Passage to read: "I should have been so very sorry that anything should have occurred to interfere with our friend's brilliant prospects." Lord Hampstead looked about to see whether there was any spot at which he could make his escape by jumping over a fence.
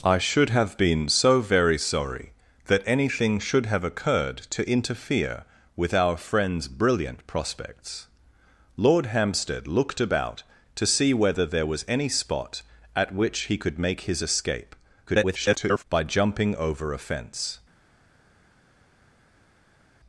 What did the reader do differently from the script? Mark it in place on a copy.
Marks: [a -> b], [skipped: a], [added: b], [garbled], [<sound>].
"I should have been so very sorry that anything should have occurred to interfere with our friend's brilliant prospects." Lord Hampstead looked about to see whether there was any spot at which he could make his escape [garbled] by jumping over a fence.